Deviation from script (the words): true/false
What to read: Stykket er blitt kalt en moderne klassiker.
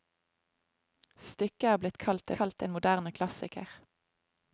true